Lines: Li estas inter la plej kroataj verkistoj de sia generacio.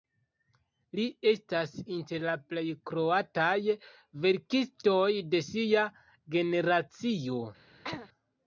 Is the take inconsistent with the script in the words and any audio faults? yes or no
yes